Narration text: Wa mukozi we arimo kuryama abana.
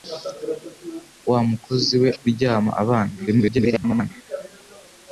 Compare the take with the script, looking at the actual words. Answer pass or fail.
fail